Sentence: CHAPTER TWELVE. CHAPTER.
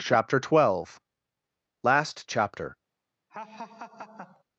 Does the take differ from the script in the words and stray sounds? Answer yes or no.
yes